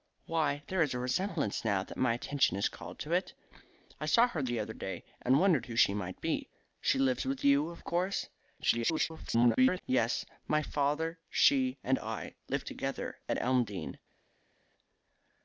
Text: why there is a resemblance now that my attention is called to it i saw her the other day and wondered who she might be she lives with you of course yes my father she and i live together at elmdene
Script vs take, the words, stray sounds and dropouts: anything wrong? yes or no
yes